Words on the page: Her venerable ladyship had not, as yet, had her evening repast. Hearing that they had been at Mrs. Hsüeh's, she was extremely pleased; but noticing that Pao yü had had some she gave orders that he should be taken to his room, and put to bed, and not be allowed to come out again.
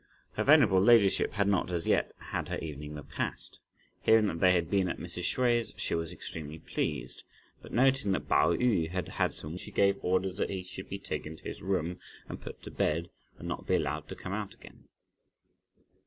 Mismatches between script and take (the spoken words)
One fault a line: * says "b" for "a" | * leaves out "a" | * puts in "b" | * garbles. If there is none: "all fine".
all fine